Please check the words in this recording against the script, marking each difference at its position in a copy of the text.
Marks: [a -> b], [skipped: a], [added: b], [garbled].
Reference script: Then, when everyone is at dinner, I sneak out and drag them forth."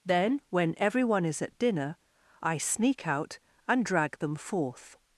Then, when everyone is at dinner, I sneak out and drag them forth."